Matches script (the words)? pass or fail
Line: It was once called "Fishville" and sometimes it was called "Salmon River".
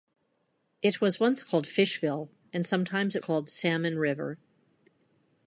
fail